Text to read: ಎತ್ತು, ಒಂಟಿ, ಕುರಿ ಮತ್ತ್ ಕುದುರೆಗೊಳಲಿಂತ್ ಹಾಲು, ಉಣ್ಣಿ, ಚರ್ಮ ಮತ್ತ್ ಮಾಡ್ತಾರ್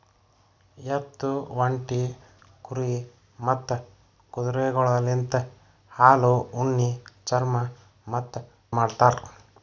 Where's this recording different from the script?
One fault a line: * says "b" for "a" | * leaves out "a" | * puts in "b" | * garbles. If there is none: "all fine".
all fine